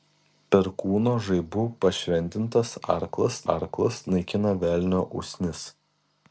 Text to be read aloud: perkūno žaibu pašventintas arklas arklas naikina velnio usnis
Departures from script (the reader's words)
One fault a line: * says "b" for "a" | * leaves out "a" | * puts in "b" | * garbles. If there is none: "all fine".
all fine